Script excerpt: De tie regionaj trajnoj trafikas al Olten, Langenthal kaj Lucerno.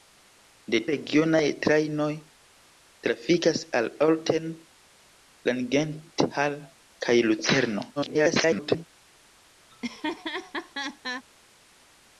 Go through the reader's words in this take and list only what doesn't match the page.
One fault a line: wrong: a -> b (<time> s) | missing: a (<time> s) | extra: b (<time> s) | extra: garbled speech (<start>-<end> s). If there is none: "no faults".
missing: tie (0.8 s)
extra: garbled speech (8.0-8.9 s)